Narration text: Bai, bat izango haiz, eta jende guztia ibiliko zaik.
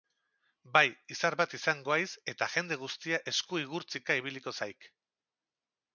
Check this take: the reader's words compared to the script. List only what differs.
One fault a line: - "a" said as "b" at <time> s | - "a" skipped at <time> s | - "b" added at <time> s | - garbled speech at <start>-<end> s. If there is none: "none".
- "izar" added at 1.1 s
- "esku igurtzika" added at 3.3 s